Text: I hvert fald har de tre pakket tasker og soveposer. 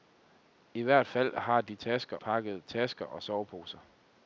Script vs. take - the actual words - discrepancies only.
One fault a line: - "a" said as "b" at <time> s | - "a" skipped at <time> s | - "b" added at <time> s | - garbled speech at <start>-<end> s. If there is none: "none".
- "tre" said as "tasker" at 1.8 s